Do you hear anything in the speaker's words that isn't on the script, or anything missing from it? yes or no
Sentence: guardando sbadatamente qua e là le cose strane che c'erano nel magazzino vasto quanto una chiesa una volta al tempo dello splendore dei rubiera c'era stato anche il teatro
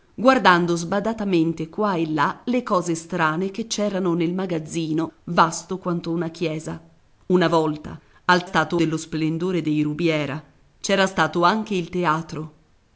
yes